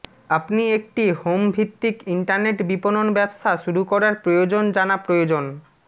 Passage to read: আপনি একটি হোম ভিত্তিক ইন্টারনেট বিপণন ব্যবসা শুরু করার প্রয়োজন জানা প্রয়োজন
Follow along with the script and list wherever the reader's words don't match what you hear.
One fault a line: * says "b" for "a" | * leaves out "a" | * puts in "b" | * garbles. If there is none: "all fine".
all fine